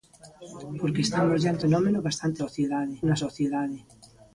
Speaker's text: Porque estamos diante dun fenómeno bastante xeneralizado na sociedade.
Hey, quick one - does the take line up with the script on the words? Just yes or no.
no